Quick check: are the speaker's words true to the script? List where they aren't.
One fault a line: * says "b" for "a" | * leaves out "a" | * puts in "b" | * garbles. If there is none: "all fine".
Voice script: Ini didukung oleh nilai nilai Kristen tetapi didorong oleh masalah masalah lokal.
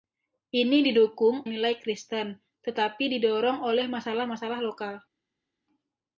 * leaves out "oleh nilai"